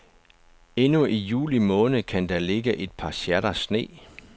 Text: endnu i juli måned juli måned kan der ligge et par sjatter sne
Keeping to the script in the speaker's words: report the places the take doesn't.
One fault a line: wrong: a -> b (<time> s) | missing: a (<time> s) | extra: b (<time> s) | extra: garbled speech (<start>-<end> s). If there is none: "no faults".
missing: juli måned (2.0 s)